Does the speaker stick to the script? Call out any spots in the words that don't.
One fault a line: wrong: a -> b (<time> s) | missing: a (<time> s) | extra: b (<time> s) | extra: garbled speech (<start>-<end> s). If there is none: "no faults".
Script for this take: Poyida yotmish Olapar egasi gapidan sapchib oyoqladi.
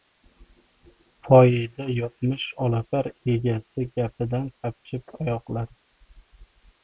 no faults